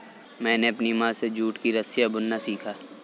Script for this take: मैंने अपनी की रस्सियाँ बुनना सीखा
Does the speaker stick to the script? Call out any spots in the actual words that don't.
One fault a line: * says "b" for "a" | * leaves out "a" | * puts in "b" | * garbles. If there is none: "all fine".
* puts in "माँ से जूट"